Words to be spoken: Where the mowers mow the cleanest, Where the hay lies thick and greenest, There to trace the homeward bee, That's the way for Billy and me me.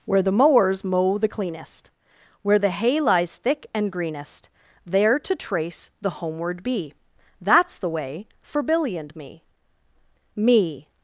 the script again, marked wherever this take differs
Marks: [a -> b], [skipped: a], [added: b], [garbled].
Where the mowers mow the cleanest, Where the hay lies thick and greenest, There to trace the homeward bee, That's the way for Billy and me me.